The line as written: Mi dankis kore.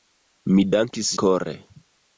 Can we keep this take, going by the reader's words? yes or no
yes